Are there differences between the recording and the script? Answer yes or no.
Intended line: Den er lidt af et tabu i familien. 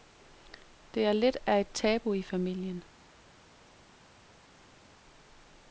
yes